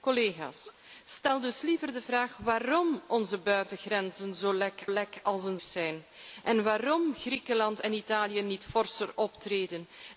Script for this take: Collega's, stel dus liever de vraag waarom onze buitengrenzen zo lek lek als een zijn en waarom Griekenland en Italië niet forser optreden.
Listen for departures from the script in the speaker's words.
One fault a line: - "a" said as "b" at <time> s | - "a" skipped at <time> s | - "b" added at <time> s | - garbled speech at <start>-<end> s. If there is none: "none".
none